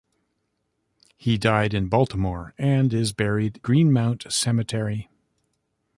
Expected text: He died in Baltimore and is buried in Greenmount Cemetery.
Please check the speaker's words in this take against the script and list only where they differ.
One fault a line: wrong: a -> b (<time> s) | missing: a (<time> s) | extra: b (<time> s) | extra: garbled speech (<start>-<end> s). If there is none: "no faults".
missing: in (3.6 s)